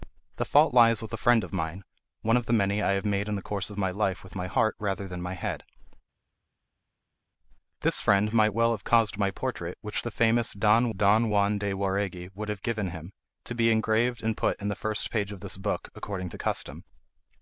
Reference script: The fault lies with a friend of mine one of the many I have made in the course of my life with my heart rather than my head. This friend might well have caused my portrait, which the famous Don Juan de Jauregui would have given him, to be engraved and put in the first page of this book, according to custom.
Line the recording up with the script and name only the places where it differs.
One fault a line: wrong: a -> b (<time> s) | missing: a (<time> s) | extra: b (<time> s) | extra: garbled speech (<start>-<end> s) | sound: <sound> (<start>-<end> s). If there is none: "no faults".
extra: Don (10.9 s)